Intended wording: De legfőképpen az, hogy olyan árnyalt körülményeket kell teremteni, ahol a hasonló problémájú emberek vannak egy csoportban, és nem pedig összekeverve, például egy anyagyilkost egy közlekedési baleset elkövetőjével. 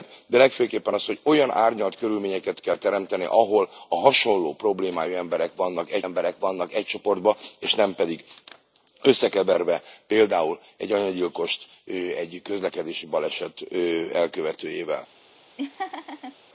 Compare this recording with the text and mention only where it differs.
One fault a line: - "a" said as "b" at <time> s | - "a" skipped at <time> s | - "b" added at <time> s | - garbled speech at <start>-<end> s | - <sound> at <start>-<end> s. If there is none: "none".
- "emberek vannak egy" added at 6.0 s
- laugh at 15.6-16.4 s